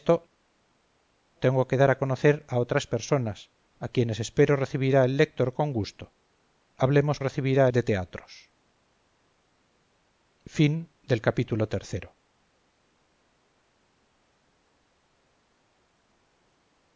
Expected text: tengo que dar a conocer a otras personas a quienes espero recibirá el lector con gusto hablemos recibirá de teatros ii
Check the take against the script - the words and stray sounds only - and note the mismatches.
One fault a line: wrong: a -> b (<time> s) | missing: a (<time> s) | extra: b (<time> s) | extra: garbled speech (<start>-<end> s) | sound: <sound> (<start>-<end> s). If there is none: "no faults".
no faults